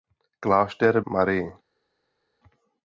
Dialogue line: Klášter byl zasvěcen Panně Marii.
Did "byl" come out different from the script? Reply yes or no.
yes